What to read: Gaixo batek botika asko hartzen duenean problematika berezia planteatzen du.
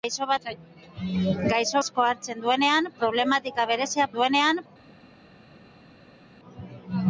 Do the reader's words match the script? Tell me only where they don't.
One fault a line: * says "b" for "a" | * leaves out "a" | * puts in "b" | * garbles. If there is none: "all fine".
* leaves out "batek botika"
* says "duenean" for "planteatzen"